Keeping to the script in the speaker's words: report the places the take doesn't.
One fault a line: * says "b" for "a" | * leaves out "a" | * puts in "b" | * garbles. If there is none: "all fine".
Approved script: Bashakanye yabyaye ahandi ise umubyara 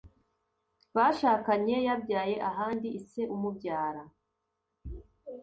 all fine